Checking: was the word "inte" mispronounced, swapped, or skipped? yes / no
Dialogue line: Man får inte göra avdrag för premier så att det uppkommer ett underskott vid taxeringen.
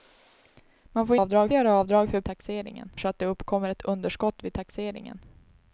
yes